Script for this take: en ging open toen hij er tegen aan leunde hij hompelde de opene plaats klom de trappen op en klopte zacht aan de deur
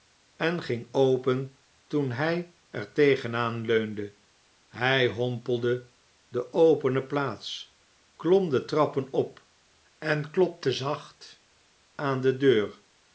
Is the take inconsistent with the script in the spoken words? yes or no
no